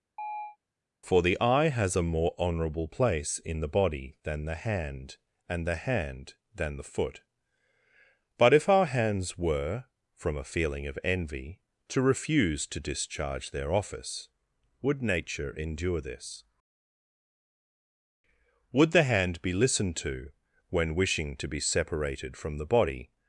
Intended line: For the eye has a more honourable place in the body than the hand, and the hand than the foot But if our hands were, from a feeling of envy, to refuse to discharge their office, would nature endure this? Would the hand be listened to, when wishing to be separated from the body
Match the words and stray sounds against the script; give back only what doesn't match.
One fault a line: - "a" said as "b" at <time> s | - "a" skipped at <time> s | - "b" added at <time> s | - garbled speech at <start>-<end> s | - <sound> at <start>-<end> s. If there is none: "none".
- chirp at 0.2-0.6 s